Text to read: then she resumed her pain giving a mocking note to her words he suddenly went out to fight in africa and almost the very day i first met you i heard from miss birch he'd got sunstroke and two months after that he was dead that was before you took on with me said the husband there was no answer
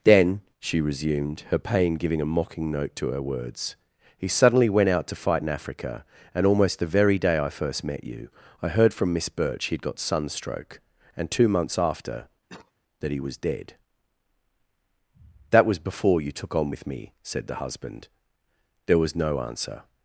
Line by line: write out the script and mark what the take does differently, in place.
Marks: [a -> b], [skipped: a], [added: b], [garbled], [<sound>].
then she resumed her pain giving a mocking note to her words he suddenly went out to fight in africa and almost the very day i first met you i heard from miss birch he'd got sunstroke and two months after [cough] that he was dead that was before you took on with me said the husband there was no answer